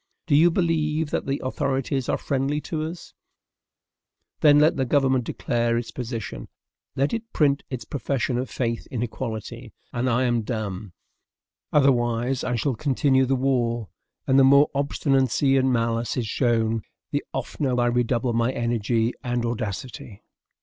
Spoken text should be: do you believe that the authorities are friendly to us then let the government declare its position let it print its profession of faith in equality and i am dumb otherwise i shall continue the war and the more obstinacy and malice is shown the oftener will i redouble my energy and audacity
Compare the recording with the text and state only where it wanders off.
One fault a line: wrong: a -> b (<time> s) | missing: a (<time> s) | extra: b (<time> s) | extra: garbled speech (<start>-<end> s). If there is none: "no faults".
missing: will (17.8 s)